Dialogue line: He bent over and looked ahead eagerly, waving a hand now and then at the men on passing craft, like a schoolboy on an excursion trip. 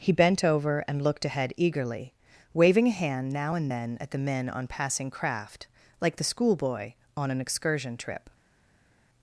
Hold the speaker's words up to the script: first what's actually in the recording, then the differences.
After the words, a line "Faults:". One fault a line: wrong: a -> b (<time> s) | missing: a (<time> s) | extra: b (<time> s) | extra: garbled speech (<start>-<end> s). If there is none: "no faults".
He bent over and looked ahead eagerly, waving a hand now and then at the men on passing craft, like the schoolboy on an excursion trip.
Faults:
wrong: a -> the (6.2 s)